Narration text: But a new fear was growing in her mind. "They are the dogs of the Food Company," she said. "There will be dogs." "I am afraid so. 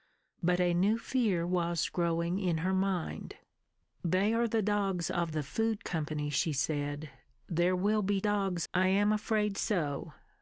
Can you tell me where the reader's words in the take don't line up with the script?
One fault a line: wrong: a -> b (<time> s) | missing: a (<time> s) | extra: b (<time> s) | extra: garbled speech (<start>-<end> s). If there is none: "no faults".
no faults